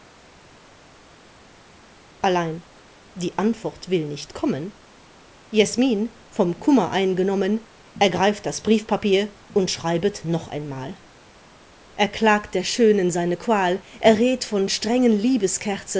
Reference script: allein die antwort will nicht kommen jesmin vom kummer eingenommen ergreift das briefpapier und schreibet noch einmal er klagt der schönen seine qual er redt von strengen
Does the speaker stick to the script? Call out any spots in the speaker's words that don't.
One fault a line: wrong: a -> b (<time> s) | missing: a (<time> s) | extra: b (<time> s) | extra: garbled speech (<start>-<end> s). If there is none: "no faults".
no faults